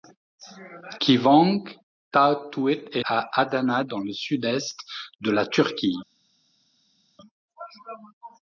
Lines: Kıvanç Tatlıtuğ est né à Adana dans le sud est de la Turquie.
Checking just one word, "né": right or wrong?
wrong